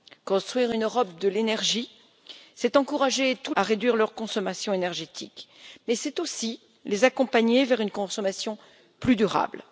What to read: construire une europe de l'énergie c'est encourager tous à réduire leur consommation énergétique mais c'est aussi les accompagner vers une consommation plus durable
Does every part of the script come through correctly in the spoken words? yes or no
yes